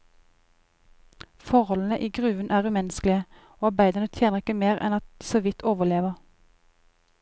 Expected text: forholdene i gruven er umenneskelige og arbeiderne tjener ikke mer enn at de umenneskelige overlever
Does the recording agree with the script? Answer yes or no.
no